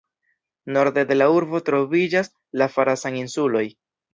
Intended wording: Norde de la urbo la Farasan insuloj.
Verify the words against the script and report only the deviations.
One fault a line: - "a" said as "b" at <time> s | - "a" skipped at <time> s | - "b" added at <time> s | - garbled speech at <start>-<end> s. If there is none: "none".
- "troviĝas" added at 1.7 s